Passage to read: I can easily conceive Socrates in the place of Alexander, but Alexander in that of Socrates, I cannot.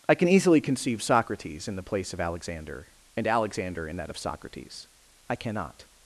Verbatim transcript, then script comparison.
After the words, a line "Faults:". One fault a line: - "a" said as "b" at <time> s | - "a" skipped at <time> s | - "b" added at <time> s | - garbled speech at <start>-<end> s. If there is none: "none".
I can easily conceive Socrates in the place of Alexander, and Alexander in that of Socrates, I cannot.
Faults:
- "but" said as "and" at 3.1 s